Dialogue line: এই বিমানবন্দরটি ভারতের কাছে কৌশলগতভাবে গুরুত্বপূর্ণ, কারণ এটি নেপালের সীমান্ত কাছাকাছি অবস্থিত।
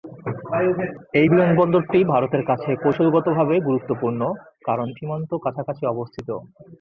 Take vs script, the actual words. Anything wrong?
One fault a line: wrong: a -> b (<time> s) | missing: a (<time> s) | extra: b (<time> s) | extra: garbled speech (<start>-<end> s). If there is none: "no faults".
missing: এটি নেপালের (4.9 s)